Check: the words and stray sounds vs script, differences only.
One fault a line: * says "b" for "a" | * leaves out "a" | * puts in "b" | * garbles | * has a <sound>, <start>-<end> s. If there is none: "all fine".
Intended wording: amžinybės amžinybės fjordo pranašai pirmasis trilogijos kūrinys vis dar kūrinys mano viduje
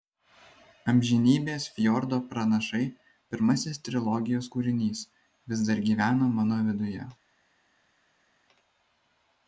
* leaves out "amžinybės"
* says "gyvena" for "kūrinys"